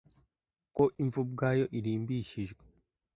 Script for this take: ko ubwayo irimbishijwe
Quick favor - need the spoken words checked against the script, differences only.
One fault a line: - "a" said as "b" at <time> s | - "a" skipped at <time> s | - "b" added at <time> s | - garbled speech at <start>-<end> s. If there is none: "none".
- "imva" added at 1.0 s